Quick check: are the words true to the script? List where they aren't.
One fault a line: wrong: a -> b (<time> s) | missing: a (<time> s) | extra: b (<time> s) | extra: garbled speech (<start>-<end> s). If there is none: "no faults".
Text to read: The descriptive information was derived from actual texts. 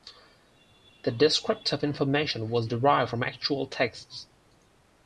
no faults